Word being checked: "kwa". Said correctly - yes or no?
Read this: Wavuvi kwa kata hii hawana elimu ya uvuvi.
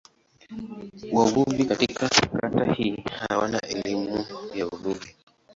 no